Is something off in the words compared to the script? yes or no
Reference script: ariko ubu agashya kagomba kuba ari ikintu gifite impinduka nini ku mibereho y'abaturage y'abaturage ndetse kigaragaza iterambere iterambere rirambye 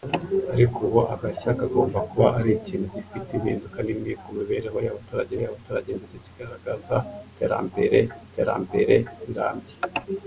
no